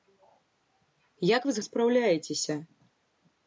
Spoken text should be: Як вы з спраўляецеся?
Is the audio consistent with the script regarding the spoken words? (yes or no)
yes